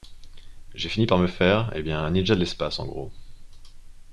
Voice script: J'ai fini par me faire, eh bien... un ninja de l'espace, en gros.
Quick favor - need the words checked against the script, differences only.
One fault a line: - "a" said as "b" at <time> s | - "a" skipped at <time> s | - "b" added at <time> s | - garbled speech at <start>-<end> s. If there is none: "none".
none